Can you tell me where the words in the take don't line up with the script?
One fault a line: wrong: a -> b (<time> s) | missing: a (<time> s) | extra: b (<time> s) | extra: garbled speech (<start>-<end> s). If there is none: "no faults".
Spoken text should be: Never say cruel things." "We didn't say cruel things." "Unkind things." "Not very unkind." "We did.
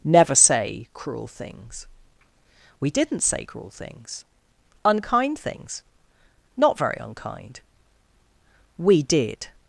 no faults